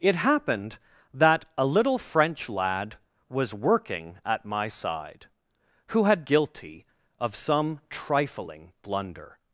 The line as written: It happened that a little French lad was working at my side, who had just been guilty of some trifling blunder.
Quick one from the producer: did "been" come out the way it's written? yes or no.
no